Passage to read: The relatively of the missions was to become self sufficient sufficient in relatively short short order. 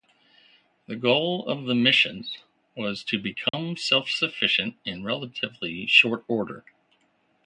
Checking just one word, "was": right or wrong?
right